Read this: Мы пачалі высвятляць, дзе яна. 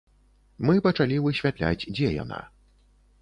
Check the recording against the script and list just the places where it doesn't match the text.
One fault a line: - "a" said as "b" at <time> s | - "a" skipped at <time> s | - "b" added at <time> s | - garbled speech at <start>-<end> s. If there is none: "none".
none